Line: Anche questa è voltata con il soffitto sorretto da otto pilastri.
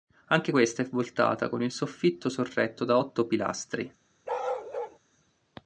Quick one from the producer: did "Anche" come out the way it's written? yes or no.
yes